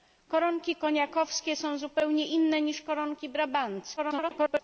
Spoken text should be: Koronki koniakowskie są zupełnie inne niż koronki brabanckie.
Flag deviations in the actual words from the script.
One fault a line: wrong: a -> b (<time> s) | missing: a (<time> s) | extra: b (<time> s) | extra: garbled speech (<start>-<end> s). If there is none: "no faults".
extra: garbled speech (4.0-4.6 s)